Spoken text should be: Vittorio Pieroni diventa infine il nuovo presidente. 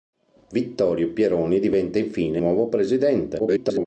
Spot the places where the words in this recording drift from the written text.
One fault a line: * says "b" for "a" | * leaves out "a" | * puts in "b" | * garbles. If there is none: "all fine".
* leaves out "il"
* garbles